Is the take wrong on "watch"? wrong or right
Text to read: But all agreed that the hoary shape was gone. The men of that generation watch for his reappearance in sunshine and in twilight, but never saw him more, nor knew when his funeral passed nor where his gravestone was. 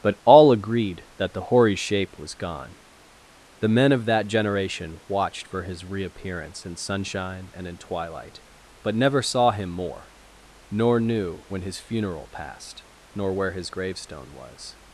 wrong